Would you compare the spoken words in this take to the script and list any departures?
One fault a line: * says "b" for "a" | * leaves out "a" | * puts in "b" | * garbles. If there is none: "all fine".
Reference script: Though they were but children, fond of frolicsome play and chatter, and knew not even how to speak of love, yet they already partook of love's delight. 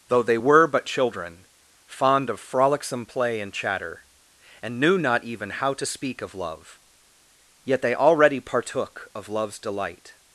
all fine